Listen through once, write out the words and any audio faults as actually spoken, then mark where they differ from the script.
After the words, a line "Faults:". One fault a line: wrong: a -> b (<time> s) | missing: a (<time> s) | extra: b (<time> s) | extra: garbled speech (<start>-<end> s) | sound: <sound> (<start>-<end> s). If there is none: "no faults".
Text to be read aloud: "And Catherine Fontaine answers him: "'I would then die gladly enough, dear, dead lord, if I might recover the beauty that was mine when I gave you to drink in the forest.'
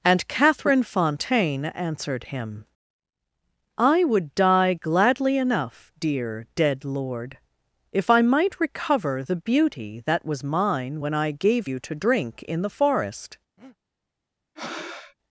"And Catherine Fontaine answered him: "'I would die gladly enough, dear, dead lord, if I might recover the beauty that was mine when I gave you to drink in the forest.'
Faults:
wrong: answers -> answered (1.6 s)
missing: then (4.3 s)
sound: breath (13.6-13.8 s)
sound: breath (14.6-15.2 s)